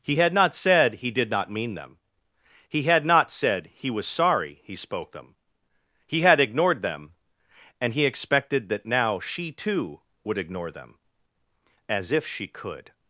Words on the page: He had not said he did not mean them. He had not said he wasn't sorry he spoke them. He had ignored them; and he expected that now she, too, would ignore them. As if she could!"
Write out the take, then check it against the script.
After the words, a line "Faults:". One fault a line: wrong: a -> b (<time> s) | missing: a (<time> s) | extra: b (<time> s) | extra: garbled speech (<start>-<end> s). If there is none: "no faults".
He had not said he did not mean them. He had not said he was sorry he spoke them. He had ignored them; and he expected that now she, too, would ignore them. As if she could!"
Faults:
wrong: wasn't -> was (3.9 s)